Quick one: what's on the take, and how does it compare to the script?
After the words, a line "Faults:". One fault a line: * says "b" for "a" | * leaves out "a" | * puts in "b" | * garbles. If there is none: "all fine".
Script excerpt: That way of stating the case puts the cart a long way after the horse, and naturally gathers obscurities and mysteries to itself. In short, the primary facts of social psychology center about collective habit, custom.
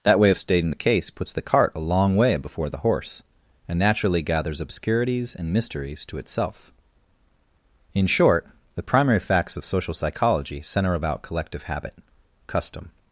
That way of stating the case puts the cart a long way before the horse, and naturally gathers obscurities and mysteries to itself. In short, the primary facts of social psychology center about collective habit, custom.
Faults:
* says "before" for "after"